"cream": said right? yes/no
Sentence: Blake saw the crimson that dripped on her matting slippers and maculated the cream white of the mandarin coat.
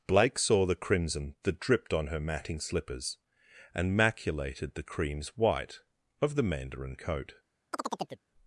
no